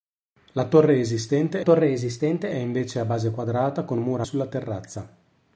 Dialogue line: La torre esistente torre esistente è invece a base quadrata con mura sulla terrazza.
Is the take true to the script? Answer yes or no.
yes